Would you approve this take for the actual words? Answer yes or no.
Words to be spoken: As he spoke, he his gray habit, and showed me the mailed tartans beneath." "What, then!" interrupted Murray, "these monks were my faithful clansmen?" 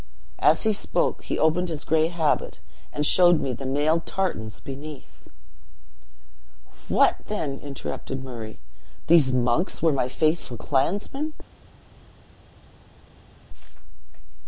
no